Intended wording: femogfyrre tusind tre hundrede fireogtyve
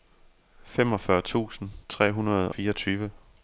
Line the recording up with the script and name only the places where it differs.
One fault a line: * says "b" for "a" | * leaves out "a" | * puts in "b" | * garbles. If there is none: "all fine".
all fine